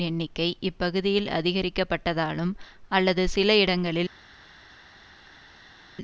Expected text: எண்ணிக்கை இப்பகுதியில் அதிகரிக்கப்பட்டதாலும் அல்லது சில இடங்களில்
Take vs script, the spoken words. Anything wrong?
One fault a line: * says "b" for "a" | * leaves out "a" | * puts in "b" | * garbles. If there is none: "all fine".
all fine